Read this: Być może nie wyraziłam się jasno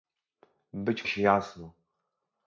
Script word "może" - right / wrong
wrong